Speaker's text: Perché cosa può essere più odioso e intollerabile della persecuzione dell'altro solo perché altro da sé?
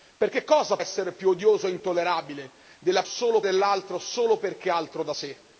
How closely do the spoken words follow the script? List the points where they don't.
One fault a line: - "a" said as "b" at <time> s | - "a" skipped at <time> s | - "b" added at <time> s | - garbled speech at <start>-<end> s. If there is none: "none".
- "può" skipped at 0.8 s
- "persecuzione" said as "solo" at 3.0 s